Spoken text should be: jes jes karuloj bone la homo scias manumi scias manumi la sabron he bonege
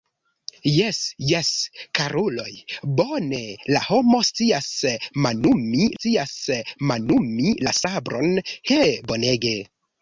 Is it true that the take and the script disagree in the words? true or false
false